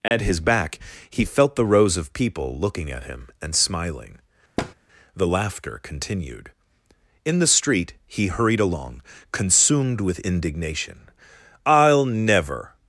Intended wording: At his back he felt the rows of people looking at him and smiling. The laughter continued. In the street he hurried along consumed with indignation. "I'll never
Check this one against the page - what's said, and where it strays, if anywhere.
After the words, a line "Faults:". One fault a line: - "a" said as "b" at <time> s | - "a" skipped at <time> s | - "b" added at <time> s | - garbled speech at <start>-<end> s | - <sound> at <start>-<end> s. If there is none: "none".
At his back he felt the rows of people looking at him and smiling. The laughter continued. In the street he hurried along consumed with indignation. "I'll never
Faults:
- dropout at 0.1-0.1 s
- thud at 4.6-4.7 s